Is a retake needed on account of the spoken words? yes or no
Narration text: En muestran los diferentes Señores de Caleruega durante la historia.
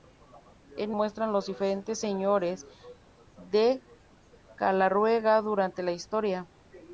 no